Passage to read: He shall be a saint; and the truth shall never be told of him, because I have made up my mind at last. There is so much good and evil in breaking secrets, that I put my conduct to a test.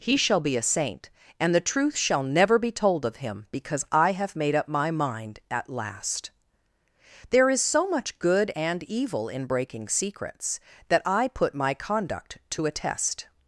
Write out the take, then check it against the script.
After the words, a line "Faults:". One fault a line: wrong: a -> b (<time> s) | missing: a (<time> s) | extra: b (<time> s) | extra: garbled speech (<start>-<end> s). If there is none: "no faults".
He shall be a saint; and the truth shall never be told of him, because I have made up my mind at last. There is so much good and evil in breaking secrets, that I put my conduct to a test.
Faults:
no faults